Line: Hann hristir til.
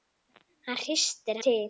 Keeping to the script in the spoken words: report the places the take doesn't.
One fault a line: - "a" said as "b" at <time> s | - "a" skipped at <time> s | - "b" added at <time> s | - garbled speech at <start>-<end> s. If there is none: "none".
none